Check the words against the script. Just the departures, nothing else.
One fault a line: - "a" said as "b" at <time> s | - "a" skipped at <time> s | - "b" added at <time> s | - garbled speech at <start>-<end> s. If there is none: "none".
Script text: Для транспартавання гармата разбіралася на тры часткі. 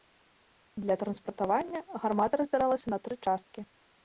none